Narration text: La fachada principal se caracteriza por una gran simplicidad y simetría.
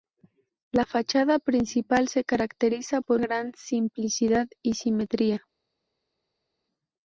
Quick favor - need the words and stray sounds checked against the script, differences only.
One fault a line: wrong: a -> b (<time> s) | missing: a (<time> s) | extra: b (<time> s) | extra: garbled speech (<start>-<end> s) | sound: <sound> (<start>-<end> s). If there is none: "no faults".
missing: una (3.2 s)